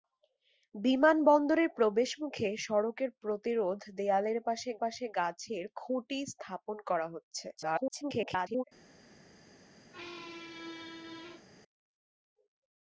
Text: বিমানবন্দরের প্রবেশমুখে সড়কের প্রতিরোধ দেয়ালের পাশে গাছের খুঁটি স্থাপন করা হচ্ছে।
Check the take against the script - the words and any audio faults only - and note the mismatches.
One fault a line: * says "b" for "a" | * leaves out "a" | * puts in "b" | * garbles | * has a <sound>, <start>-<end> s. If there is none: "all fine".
* puts in "পাশে"
* garbles
* has a squeak, 9.9-11.5 s